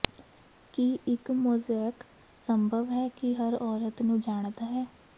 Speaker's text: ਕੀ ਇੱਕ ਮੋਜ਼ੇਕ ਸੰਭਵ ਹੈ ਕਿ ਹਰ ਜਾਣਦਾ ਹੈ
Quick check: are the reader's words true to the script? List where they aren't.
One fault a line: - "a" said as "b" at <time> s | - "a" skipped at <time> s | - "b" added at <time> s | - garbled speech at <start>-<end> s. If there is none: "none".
- "ਔਰਤ ਨੂੰ" added at 3.6 s